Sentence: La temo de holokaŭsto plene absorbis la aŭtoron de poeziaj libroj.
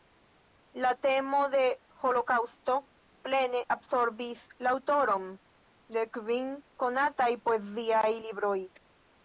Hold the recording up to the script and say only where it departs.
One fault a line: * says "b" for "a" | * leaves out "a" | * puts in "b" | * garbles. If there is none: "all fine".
* puts in "kvin konataj"